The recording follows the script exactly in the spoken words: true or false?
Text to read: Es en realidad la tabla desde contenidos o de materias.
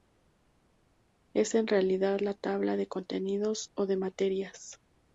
false